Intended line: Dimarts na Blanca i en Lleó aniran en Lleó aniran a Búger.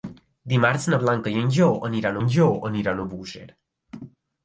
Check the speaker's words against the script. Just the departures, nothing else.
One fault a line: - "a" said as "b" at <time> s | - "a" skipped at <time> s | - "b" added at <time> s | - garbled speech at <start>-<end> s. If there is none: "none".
none